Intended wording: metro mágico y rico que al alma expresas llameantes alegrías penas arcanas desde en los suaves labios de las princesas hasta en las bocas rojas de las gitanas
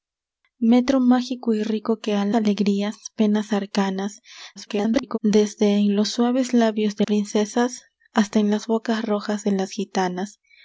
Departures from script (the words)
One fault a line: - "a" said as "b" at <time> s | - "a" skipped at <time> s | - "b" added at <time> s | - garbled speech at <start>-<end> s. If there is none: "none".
- "alma expresas llameantes" skipped at 2.3 s
- garbled speech at 4.6-5.2 s
- "las" skipped at 7.1 s